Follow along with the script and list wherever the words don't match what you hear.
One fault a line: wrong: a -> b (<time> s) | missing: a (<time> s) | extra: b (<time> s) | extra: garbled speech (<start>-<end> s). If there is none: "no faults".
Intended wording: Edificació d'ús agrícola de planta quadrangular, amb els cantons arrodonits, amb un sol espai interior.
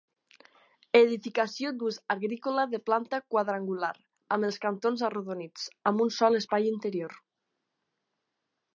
no faults